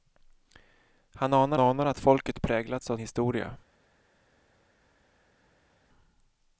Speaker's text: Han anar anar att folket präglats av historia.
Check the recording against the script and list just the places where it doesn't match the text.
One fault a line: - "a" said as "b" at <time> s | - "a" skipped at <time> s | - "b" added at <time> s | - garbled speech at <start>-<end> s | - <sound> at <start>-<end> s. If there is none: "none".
none